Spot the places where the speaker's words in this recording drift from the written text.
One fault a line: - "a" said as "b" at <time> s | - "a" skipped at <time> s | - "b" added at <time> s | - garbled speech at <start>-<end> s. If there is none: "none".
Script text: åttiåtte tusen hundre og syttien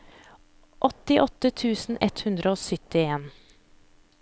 - "ett" added at 2.0 s